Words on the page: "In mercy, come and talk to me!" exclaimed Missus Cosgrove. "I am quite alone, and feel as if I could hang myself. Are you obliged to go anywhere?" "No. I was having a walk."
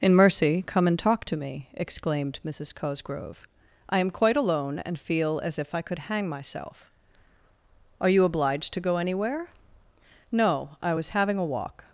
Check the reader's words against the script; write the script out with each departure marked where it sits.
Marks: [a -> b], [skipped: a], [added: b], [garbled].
"In mercy, come and talk to me!" exclaimed Missus Cosgrove. "I am quite alone, and feel as if I could hang myself. Are you obliged to go anywhere?" "No. I was having a walk."